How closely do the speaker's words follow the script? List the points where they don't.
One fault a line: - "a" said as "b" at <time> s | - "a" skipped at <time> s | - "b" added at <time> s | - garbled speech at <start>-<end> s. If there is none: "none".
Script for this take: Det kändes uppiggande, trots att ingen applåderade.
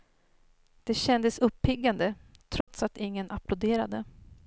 none